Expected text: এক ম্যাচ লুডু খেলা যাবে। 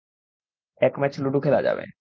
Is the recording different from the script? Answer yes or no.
no